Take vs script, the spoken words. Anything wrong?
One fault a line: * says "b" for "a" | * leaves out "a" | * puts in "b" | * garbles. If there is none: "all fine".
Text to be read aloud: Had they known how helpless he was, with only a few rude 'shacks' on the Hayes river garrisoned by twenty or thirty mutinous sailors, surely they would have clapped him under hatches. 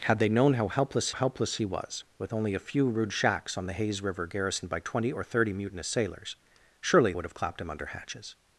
* puts in "helpless"
* leaves out "they"